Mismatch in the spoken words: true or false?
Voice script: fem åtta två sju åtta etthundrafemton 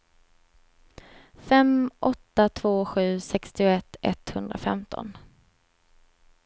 true